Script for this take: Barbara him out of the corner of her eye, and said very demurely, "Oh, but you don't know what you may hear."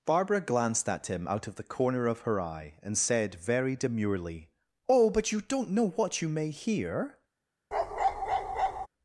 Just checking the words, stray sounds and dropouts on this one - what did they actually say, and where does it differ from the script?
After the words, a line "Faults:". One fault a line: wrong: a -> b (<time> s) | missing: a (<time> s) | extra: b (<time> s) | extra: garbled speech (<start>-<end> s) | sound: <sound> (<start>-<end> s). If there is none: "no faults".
Barbara glanced at him out of the corner of her eye, and said very demurely, "Oh, but you don't know what you may hear."
Faults:
extra: glanced at (0.4 s)
sound: bark (7.7-8.9 s)